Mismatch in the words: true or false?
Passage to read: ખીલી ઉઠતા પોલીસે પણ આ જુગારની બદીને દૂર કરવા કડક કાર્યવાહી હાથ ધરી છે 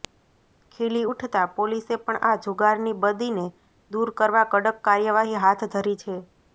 false